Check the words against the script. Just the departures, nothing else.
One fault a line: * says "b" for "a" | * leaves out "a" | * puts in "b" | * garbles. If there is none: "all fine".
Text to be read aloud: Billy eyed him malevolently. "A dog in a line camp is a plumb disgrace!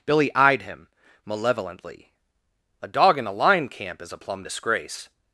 all fine